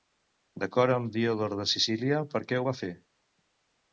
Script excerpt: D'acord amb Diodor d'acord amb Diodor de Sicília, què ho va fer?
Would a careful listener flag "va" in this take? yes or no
no